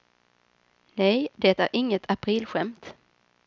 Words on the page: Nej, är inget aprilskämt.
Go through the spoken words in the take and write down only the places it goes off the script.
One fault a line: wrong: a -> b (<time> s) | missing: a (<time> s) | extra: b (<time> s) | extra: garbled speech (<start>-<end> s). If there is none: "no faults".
extra: det (1.4 s)